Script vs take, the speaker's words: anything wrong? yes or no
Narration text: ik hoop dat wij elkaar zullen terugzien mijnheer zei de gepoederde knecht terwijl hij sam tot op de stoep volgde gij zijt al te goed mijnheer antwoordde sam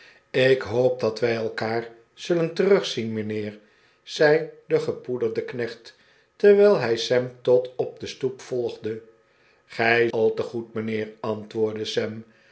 yes